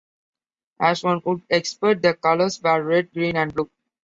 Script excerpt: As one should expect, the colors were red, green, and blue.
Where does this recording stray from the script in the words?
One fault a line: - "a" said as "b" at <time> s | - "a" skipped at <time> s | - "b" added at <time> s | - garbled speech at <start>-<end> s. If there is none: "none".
- "should" said as "would" at 1.2 s